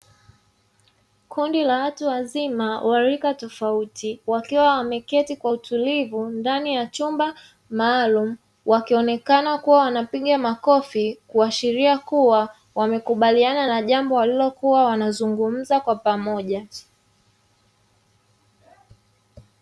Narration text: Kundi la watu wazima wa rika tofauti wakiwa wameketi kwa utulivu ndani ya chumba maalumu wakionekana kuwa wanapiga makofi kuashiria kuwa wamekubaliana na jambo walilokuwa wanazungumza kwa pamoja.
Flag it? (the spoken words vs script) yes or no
no